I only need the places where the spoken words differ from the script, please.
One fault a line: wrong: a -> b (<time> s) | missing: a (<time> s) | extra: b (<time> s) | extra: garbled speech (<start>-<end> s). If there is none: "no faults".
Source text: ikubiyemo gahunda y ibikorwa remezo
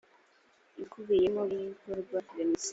missing: gahunda (1.4 s)